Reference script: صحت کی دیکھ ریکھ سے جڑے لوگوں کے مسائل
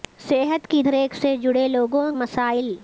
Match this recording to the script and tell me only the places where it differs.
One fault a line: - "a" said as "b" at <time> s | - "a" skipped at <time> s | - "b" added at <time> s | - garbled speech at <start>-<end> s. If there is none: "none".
- "دیکھ" skipped at 0.8 s
- "کے" skipped at 2.1 s